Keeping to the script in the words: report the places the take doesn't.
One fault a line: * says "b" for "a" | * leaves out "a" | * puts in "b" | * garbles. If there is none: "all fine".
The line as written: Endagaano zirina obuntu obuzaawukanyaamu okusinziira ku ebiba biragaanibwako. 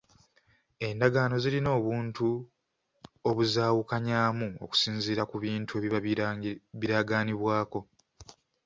* puts in "bintu"